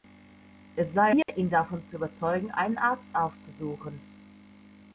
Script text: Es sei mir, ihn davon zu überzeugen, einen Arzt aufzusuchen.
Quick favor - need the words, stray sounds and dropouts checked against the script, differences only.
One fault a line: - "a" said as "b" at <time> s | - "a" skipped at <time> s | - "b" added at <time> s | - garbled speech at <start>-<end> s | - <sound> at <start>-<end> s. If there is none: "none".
- dropout at 1.2-1.3 s